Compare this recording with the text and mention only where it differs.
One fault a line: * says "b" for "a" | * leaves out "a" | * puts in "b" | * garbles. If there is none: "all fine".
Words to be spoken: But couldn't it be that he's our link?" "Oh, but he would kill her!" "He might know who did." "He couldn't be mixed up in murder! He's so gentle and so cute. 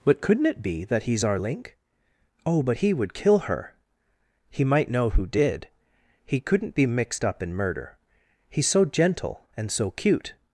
all fine